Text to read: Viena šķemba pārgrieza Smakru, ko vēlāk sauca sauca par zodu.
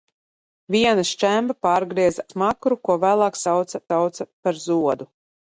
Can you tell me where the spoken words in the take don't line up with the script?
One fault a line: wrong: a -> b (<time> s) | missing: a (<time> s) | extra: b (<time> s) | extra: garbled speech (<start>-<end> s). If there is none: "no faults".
no faults